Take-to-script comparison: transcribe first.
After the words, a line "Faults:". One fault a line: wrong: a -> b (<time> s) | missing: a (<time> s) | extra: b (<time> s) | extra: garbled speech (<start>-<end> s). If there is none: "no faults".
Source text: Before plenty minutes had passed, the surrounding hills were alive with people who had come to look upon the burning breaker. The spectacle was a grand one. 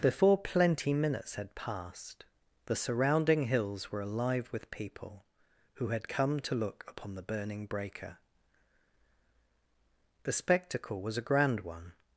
Before plenty minutes had passed, the surrounding hills were alive with people who had come to look upon the burning breaker. The spectacle was a grand one.
Faults:
no faults